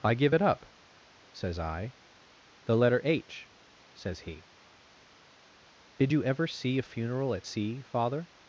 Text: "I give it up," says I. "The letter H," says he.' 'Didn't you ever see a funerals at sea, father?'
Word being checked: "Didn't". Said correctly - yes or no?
no